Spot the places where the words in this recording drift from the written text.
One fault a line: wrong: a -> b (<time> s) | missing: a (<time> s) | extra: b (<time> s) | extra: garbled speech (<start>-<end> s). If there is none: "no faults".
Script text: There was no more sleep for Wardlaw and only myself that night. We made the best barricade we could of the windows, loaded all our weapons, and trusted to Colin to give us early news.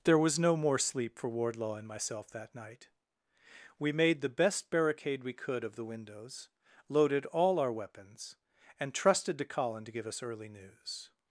missing: only (1.9 s)